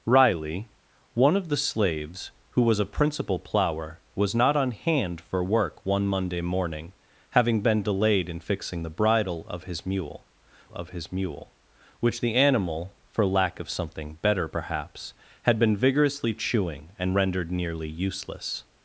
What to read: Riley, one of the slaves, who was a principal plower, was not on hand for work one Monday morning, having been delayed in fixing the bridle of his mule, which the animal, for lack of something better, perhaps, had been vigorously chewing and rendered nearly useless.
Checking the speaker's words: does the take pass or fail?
fail